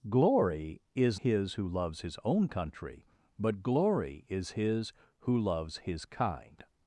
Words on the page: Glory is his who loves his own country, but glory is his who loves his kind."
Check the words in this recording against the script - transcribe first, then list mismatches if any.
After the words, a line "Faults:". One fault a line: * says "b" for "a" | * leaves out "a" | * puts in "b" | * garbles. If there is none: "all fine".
Glory is his who loves his own country, but glory is his who loves his kind."
Faults:
all fine